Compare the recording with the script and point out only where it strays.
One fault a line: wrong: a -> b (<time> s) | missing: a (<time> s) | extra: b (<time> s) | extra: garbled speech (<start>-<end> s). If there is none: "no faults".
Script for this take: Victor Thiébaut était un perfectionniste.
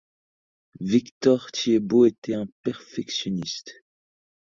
no faults